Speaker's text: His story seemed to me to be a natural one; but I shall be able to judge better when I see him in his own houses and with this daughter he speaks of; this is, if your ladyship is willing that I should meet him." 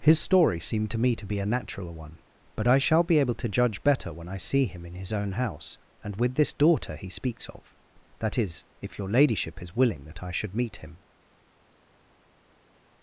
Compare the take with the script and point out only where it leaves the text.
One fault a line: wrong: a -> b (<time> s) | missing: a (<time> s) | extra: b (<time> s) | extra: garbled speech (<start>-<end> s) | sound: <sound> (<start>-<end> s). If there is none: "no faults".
wrong: houses -> house (5.3 s)
wrong: this -> that (8.2 s)